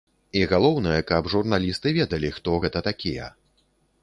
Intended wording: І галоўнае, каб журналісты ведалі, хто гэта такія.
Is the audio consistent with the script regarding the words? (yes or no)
yes